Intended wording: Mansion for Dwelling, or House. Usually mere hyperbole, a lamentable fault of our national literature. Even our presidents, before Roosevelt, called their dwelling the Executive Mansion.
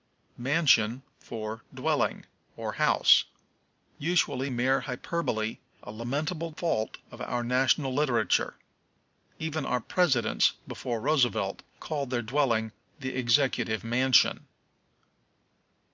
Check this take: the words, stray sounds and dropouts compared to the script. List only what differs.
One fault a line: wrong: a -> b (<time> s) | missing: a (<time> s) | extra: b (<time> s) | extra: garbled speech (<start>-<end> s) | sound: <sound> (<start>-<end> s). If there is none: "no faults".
no faults